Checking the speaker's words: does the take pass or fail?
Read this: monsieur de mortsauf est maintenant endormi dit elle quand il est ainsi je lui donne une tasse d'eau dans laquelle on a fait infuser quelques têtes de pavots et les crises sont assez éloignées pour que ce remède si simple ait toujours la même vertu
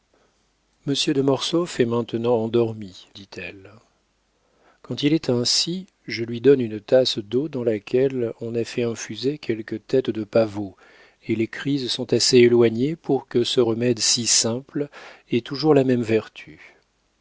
pass